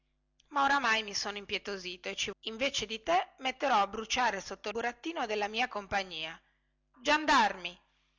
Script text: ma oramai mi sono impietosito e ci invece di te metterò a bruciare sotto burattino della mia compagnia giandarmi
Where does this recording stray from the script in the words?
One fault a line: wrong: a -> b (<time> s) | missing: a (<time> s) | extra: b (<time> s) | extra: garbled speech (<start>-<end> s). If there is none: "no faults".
no faults